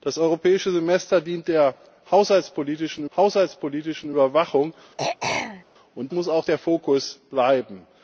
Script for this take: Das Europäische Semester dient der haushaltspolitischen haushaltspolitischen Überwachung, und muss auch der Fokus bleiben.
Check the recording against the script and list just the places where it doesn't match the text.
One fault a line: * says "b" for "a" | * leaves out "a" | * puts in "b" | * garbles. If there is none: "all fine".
all fine